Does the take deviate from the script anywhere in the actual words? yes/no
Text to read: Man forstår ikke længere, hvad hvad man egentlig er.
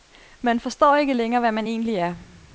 yes